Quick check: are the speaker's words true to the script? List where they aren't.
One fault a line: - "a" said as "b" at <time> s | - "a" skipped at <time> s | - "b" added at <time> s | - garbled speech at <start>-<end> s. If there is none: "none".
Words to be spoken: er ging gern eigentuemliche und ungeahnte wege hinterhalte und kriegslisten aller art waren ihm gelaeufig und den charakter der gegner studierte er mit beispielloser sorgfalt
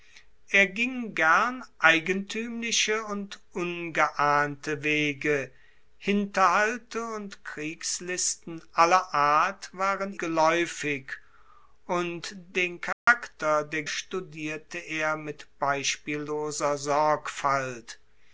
- "ihm" skipped at 10.2 s
- "gegner" skipped at 13.8 s